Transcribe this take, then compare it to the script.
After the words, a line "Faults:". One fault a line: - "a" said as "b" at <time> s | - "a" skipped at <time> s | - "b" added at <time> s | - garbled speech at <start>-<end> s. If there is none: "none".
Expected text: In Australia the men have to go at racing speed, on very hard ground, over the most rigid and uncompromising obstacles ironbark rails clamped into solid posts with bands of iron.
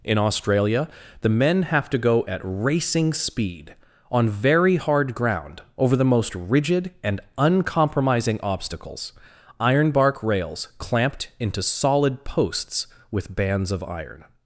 In Australia the men have to go at racing speed, on very hard ground, over the most rigid and uncompromising obstacles ironbark rails clamped into solid posts with bands of iron.
Faults:
none